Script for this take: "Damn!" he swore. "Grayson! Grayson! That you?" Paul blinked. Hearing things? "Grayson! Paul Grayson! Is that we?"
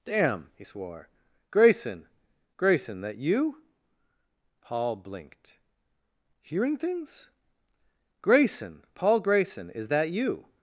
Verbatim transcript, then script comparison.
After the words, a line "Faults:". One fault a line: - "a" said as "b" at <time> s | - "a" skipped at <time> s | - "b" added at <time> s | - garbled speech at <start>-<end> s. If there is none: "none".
"Damn!" he swore. "Grayson! Grayson! That you?" Paul blinked. Hearing things? "Grayson! Paul Grayson! Is that you?"
Faults:
- "we" said as "you" at 10.1 s